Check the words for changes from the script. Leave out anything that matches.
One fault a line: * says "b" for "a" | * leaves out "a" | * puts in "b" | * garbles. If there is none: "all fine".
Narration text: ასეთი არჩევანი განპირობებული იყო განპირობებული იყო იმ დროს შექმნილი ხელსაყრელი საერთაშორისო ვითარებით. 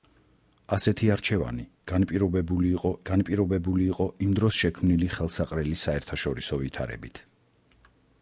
all fine